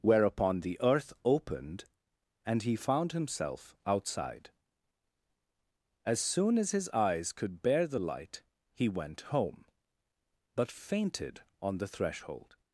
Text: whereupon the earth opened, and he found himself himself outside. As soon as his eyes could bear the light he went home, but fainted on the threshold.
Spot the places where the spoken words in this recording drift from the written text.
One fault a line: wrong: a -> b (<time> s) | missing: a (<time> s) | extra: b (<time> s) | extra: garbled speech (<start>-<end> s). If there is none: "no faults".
missing: himself (3.8 s)